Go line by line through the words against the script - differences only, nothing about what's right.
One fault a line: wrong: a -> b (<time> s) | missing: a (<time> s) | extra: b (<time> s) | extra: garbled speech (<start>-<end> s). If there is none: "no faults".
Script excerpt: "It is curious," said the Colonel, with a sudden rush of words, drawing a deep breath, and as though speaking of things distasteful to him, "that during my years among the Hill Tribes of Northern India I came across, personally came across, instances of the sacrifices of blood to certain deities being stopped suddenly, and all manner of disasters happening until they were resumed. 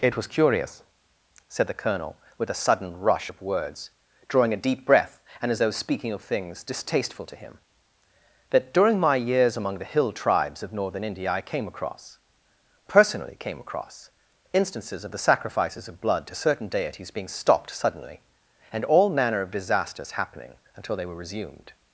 wrong: is -> was (0.2 s)